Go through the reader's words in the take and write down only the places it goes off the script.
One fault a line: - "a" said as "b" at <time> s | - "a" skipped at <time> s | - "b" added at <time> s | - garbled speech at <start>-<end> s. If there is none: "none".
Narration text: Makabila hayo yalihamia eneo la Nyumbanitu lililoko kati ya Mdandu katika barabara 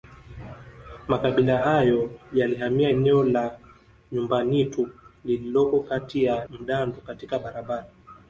none